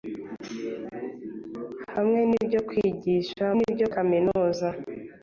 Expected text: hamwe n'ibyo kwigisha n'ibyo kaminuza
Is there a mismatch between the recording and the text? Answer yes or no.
no